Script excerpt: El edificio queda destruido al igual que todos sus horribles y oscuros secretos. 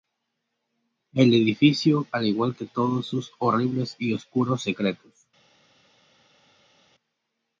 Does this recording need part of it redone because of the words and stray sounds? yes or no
yes